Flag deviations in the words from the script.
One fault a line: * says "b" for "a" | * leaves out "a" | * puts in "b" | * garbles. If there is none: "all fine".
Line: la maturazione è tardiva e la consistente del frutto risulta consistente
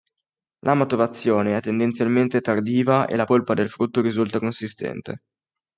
* puts in "tendenzialmente"
* says "polpa" for "consistente"